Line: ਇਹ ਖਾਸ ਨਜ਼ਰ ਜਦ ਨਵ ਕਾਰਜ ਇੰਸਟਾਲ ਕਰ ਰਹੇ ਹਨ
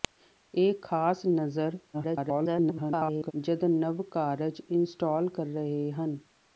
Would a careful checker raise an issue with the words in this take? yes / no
yes